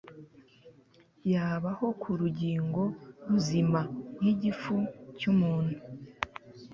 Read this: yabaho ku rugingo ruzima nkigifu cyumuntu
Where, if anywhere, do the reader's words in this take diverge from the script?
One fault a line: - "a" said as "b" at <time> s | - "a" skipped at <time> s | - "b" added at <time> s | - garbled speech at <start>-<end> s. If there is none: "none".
none